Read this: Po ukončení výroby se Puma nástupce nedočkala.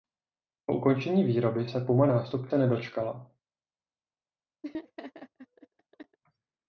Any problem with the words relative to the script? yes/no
no